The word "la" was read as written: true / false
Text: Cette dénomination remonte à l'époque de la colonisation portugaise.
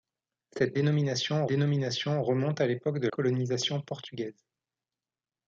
false